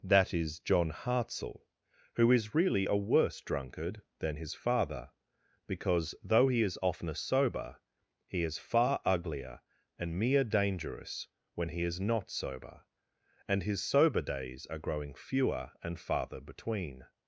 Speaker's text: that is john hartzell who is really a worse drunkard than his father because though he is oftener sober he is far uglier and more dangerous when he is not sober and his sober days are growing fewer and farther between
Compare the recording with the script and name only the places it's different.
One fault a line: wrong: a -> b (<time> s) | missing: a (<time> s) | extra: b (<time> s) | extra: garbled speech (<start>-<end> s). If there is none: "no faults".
wrong: more -> mere (10.2 s)